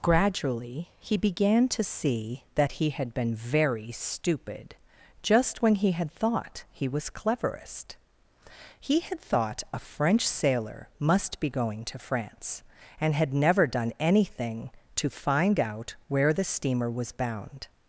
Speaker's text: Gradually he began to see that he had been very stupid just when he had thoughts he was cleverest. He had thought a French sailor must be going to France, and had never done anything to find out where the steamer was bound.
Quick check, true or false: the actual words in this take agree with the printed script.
false